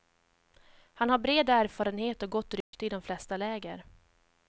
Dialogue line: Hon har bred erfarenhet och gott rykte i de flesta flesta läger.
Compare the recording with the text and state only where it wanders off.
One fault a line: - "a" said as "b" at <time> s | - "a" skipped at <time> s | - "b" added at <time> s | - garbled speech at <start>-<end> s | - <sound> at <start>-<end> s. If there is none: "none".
- "Hon" said as "Han" at 0.9 s
- dropout at 2.6-2.7 s
- "flesta" skipped at 3.4 s